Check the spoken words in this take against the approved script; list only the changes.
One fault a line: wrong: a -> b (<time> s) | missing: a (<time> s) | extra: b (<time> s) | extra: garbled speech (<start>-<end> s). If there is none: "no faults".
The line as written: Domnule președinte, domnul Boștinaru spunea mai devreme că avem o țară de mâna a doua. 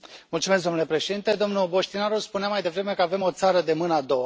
no faults